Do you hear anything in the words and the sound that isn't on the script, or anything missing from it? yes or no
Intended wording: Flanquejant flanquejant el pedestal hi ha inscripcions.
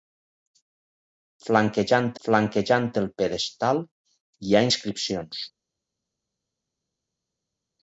no